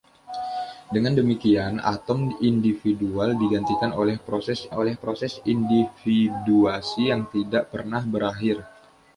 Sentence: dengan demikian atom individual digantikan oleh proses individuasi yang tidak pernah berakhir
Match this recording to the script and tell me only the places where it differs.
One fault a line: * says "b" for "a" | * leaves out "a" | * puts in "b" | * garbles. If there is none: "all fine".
* puts in "oleh proses"